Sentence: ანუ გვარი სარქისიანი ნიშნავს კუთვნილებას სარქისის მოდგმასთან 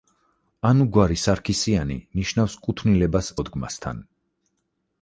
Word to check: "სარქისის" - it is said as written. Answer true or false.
false